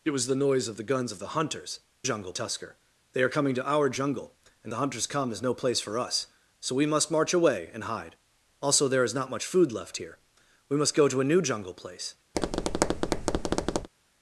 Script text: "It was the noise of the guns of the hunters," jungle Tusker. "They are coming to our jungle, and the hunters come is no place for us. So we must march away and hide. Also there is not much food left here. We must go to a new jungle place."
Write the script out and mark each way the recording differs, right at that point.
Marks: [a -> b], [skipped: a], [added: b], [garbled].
"It was the noise of the guns of the hunters," jungle Tusker. "They are coming to our jungle, and the hunters come is no place for us. So we must march away and hide. Also there is not much food left here. We must go to a new jungle place."